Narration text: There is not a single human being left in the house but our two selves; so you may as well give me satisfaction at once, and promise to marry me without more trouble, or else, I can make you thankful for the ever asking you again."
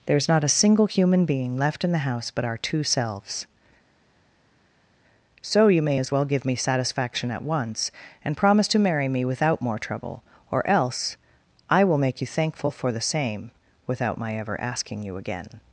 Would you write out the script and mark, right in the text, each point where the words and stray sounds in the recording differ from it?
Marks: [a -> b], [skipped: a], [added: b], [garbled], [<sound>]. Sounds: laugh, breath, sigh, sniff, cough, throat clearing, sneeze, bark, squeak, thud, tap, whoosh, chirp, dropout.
There is not a single human being left in the house but our two selves; so you may as well give me satisfaction at once, and promise to marry me without more trouble, or else, I [can -> will] make you thankful for the [added: same without my] ever asking you again."